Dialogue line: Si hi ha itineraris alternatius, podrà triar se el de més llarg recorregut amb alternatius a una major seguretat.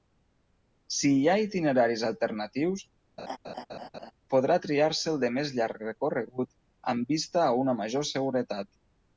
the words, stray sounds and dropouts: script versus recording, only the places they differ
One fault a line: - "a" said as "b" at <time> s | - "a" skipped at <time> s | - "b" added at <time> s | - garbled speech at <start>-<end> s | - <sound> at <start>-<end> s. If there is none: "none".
- laugh at 3.2-4.1 s
- "alternatius" said as "vista" at 7.2 s